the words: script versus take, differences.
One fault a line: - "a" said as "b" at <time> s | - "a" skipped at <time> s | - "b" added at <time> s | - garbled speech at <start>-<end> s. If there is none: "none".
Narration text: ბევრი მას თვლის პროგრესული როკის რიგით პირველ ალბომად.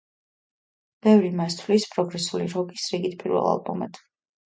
none